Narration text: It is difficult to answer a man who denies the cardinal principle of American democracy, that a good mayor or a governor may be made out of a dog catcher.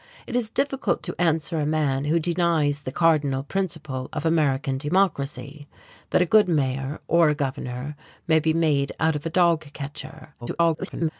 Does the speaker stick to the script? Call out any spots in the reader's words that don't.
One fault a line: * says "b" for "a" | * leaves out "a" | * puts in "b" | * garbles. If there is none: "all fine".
* garbles